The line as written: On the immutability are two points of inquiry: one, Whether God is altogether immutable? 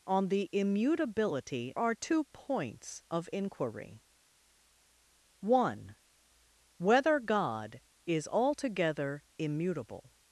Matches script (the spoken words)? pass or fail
pass